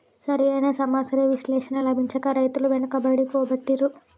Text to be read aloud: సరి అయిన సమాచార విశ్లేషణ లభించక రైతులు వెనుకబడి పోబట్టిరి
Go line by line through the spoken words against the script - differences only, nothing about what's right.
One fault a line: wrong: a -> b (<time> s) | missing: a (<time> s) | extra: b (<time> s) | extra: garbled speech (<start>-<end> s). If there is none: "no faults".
no faults